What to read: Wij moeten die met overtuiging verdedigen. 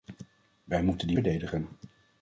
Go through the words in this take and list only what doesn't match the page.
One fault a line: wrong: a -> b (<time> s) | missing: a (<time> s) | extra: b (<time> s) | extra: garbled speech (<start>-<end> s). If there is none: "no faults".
missing: met overtuiging (1.2 s)